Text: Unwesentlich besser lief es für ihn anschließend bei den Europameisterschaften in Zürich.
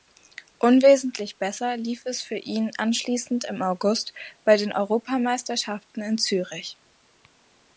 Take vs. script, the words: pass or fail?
fail